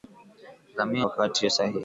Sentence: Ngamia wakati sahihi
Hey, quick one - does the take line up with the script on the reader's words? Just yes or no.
yes